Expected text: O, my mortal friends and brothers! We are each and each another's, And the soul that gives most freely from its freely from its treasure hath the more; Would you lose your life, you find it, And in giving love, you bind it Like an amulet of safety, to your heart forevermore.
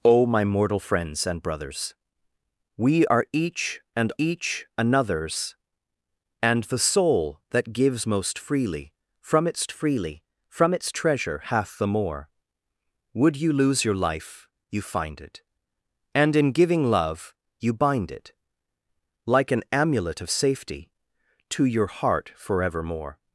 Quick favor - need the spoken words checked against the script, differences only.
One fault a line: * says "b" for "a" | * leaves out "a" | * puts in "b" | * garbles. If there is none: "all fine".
all fine